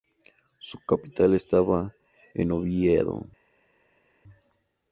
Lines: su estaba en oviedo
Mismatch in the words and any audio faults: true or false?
true